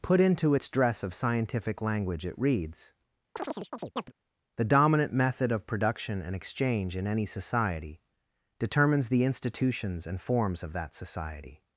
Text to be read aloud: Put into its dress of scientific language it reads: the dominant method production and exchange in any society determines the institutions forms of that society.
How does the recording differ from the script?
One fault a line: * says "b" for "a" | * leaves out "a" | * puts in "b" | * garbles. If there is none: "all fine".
* puts in "of"
* puts in "and"